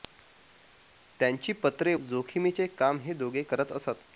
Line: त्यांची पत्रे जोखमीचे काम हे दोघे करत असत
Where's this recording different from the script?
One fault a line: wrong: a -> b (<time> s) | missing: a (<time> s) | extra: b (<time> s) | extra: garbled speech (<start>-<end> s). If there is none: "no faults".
no faults